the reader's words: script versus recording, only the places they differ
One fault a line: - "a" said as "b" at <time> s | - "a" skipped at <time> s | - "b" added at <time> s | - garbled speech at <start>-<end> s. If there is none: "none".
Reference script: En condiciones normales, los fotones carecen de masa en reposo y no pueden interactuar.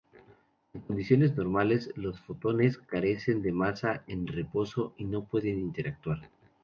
none